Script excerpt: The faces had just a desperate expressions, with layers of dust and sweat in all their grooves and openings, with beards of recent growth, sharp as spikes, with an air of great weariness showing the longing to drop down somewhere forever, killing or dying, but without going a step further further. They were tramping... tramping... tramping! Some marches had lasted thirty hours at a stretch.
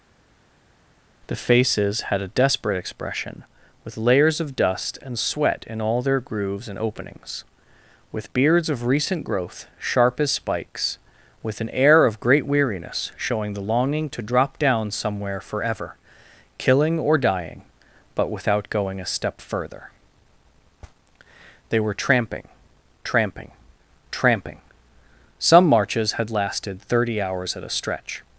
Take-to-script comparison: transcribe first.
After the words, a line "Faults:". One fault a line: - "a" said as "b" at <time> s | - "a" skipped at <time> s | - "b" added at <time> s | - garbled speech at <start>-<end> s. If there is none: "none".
The faces had a desperate expression, with layers of dust and sweat in all their grooves and openings, with beards of recent growth, sharp as spikes, with an air of great weariness showing the longing to drop down somewhere forever, killing or dying, but without going a step further. They were tramping... tramping... tramping! Some marches had lasted thirty hours at a stretch.
Faults:
- "just" skipped at 2.2 s
- "expressions" said as "expression" at 2.8 s
- "further" skipped at 19.8 s